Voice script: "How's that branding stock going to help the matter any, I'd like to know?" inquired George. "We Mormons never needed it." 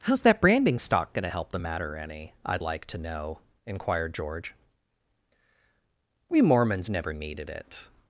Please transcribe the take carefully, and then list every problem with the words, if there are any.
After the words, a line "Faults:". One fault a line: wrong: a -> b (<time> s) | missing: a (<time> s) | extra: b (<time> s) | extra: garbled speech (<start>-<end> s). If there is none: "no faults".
"How's that branding stock going to help the matter any, I'd like to know?" inquired George. "We Mormons never needed it."
Faults:
no faults